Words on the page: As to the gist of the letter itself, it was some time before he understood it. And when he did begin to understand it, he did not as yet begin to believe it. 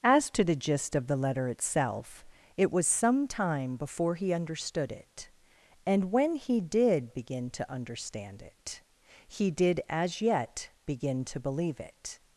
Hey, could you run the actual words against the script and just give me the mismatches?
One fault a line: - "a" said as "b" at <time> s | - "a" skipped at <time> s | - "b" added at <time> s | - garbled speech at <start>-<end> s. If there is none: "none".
- "not" skipped at 9.8 s